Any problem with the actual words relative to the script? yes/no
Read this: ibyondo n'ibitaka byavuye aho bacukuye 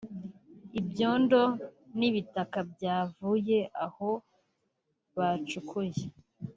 no